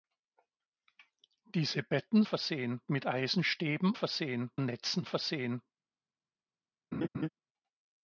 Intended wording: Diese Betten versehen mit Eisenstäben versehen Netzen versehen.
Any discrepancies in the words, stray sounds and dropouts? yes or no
yes